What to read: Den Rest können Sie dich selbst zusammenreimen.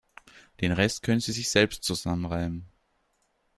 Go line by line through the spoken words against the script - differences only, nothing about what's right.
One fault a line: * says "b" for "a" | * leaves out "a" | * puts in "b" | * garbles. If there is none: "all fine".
* says "sich" for "dich"